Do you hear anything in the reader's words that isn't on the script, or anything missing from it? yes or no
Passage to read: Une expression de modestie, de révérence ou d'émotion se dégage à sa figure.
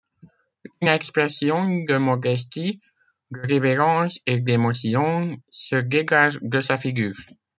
yes